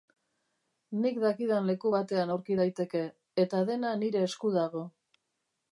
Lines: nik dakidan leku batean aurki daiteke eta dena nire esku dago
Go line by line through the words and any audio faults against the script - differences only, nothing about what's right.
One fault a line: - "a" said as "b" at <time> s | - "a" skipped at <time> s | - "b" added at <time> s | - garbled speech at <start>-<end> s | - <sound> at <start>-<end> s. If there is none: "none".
none